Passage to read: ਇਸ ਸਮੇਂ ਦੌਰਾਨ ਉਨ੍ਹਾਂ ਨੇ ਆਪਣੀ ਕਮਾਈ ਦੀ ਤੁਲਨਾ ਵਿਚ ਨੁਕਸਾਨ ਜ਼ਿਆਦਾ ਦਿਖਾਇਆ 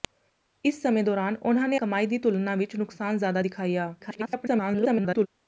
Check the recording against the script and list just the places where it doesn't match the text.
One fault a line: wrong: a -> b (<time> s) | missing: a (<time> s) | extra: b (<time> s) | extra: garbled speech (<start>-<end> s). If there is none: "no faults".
missing: ਆਪਣੀ (1.8 s)
extra: garbled speech (4.0-5.3 s)